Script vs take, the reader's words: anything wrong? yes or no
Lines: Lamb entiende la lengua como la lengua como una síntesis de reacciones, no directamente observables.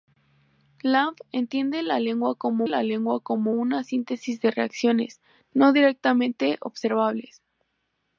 no